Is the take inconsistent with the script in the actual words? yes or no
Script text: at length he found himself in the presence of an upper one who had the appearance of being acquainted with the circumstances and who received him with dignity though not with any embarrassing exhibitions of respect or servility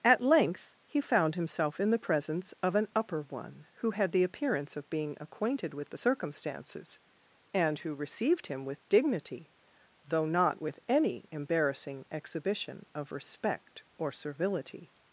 yes